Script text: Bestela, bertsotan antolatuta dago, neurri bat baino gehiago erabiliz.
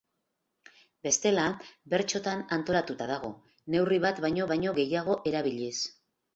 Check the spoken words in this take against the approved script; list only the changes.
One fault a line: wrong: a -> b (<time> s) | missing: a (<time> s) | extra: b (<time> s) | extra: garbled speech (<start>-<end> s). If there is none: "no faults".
extra: baino (4.5 s)